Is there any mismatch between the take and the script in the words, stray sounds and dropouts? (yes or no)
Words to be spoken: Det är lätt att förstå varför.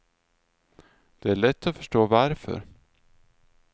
no